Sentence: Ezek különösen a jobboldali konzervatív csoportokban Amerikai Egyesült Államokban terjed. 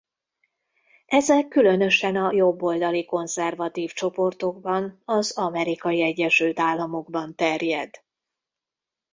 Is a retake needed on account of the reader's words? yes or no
yes